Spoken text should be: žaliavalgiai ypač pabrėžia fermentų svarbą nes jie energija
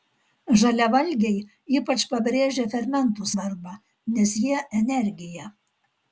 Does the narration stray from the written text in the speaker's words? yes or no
no